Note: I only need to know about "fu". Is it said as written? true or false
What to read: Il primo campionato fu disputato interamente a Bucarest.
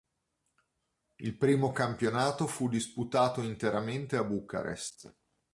true